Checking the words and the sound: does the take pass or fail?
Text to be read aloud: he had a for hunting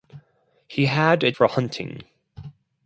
pass